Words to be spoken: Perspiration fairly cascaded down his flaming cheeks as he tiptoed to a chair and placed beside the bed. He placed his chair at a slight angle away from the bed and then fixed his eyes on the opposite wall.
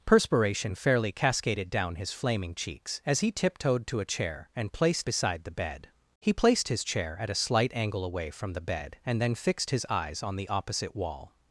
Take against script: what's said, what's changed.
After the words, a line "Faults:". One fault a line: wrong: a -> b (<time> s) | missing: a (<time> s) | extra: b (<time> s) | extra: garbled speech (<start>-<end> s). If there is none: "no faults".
Perspiration fairly cascaded down his flaming cheeks as he tiptoed to a chair and placed beside the bed. He placed his chair at a slight angle away from the bed and then fixed his eyes on the opposite wall.
Faults:
no faults